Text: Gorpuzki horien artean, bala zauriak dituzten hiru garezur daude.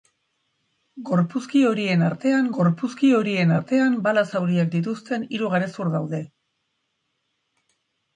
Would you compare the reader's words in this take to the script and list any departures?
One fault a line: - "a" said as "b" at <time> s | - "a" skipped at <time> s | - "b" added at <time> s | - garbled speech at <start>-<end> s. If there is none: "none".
- "gorpuzki horien artean" added at 2.6 s